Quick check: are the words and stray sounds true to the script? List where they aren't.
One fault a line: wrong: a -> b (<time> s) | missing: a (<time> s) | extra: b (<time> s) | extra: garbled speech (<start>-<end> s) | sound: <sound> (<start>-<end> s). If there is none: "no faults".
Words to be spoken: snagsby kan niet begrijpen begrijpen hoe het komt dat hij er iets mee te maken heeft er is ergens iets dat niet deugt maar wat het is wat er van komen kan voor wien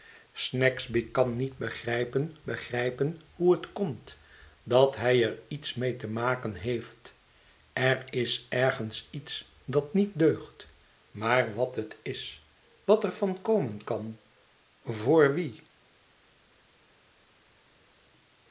no faults